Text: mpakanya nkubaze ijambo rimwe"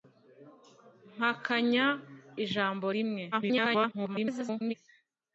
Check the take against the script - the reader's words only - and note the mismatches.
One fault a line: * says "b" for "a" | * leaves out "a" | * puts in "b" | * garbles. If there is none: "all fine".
* leaves out "nkubaze"
* garbles